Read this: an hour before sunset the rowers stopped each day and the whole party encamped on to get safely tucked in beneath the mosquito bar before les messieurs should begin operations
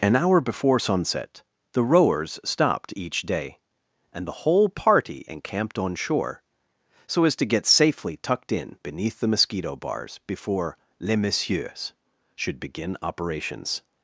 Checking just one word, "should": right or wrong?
right